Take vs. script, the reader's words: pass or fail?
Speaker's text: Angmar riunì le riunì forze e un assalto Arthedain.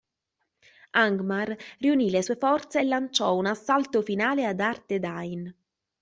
fail